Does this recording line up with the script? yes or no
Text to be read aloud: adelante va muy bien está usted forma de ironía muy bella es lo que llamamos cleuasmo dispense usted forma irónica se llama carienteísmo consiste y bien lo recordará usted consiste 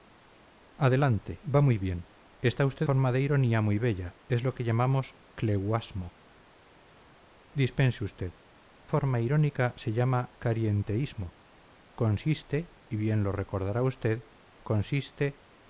yes